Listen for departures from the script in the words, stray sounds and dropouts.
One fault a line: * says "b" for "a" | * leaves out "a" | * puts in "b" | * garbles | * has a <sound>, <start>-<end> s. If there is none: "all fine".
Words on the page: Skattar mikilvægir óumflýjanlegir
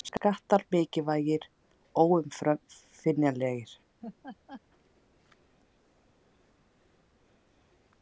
* has a laugh, 4.0-4.6 s